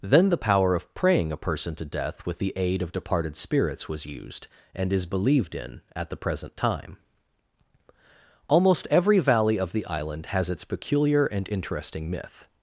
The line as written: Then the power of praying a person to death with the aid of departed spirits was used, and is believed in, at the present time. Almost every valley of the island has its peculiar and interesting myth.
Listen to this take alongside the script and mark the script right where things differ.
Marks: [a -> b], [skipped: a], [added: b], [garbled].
Then the power of praying a person to death with the aid of departed spirits was used, and is believed in, at the present time. Almost every valley of the island has its peculiar and interesting myth.